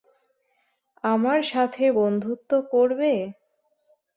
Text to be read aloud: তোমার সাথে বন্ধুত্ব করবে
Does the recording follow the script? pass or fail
fail